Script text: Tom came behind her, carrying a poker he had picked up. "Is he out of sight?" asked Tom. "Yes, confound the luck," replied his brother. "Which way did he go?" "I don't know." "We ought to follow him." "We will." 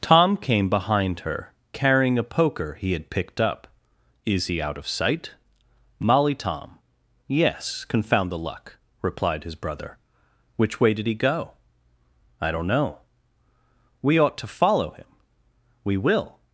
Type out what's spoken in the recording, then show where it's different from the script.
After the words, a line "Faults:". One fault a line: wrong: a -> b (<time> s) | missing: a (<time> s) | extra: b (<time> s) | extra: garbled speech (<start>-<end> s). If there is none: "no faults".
Tom came behind her, carrying a poker he had picked up. "Is he out of sight?" molly Tom. "Yes, confound the luck," replied his brother. "Which way did he go?" "I don't know." "We ought to follow him." "We will."
Faults:
wrong: asked -> molly (6.0 s)